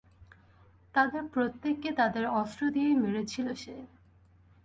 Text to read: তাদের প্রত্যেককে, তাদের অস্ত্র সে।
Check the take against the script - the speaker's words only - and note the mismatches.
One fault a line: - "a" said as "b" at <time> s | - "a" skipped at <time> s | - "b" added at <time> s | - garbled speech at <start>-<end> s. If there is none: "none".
- "দিয়েই মেরেছিল" added at 2.7 s